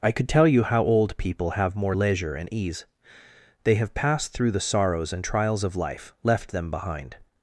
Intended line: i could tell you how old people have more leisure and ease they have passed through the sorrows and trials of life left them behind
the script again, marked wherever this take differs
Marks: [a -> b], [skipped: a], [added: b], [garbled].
i could tell you how old people have more leisure and ease they have passed through the sorrows and trials of life left them behind